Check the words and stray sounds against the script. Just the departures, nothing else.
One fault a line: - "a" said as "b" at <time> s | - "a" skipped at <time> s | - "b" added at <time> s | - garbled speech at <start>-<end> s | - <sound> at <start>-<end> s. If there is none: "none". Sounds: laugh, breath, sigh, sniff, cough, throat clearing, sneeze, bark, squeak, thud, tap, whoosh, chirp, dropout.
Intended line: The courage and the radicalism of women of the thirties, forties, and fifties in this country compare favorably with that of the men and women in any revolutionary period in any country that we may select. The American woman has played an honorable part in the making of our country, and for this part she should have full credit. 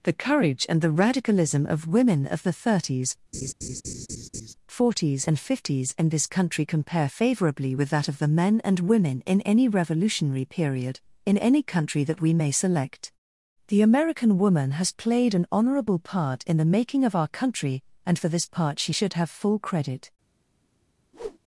- laugh at 3.3-4.5 s
- whoosh at 21.1-21.4 s